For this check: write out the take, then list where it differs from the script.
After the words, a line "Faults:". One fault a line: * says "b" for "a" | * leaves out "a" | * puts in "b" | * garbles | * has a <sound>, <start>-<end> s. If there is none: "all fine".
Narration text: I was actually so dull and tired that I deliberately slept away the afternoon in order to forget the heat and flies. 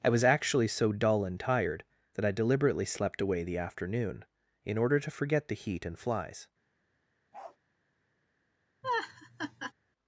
I was actually so dull and tired that I deliberately slept away the afternoon in order to forget the heat and flies.
Faults:
* has a bark, 7.3-7.6 s
* has a laugh, 8.8-9.7 s